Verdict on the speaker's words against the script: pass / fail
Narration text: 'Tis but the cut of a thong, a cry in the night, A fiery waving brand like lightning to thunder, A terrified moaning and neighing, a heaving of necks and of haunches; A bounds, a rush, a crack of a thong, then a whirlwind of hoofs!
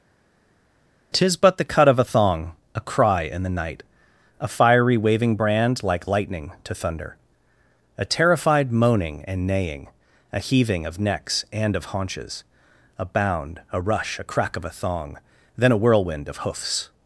fail